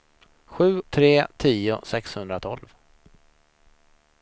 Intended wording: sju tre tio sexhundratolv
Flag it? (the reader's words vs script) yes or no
no